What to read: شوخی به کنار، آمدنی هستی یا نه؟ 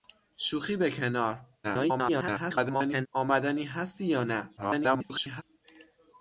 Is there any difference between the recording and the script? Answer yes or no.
yes